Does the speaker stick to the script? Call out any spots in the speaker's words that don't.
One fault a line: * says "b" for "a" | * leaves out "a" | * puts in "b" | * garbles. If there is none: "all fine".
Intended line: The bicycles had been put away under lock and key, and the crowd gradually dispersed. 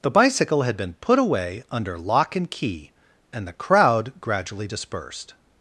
* says "bicycle" for "bicycles"